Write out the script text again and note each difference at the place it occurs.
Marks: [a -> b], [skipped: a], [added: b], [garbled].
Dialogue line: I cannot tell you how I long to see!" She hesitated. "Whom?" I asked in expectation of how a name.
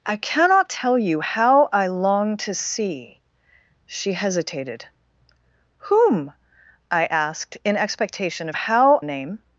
I cannot tell you how I long to see!" She hesitated. "Whom?" I asked in expectation of how a name.